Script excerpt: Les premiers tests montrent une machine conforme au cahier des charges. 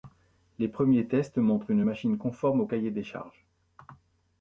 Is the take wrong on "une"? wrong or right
right